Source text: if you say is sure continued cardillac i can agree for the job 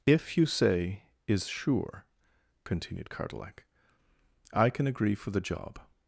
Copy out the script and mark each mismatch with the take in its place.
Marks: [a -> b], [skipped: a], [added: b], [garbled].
if you say is sure continued cardillac i can agree for the job